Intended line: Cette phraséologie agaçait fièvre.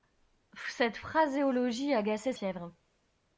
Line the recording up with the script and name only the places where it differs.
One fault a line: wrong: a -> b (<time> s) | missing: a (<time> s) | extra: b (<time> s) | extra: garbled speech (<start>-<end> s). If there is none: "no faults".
no faults